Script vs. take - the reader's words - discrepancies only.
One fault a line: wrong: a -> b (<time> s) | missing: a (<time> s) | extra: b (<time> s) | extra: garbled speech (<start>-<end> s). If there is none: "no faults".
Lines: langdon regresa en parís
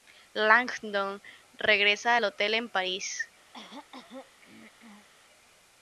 extra: al hotel (2.1 s)